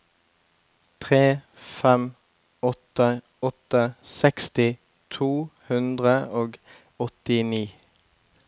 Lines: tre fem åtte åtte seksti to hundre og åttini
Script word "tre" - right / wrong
right